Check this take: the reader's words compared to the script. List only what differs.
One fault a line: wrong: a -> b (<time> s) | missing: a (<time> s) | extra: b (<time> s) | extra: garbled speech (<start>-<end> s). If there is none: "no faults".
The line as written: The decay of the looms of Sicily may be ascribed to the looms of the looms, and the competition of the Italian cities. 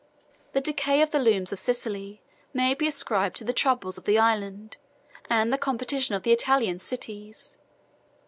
wrong: looms -> troubles (3.5 s)
wrong: looms -> island (4.2 s)